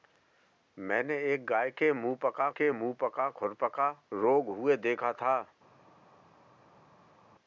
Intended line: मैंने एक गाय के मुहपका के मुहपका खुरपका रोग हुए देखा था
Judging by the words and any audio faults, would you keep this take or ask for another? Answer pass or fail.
pass